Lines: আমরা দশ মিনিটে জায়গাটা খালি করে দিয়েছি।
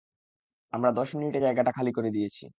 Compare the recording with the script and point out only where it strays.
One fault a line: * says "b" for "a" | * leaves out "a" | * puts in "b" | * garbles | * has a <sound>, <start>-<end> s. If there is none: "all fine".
all fine